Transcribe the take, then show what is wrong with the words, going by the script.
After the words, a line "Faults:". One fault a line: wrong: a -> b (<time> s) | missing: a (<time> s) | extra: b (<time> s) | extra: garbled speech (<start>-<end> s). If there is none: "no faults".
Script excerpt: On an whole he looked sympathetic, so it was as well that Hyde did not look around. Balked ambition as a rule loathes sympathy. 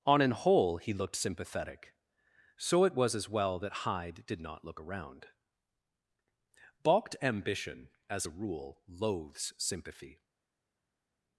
On an whole he looked sympathetic, so it was as well that Hyde did not look around. Balked ambition as a rule loathes sympathy.
Faults:
no faults